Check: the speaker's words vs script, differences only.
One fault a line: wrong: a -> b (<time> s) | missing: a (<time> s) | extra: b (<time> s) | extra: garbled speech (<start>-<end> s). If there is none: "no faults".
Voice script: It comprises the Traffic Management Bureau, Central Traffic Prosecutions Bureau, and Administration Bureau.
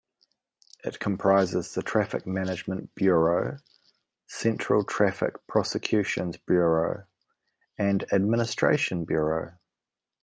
no faults